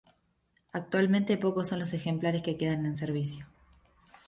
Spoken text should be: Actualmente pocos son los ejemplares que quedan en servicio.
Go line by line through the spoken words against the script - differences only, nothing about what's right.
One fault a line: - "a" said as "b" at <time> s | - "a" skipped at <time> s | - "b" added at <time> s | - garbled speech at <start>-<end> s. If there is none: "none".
none